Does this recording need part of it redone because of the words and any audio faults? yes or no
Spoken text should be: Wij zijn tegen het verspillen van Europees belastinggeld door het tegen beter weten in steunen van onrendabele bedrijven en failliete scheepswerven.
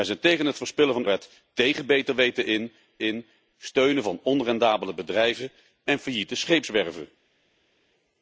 yes